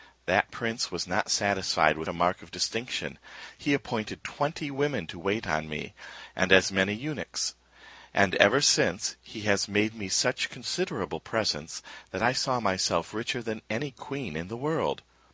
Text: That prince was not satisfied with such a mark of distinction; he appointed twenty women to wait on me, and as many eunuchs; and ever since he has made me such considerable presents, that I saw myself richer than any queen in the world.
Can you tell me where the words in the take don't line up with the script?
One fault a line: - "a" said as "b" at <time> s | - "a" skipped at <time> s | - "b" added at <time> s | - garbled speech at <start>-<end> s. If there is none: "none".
- "such" skipped at 2.1 s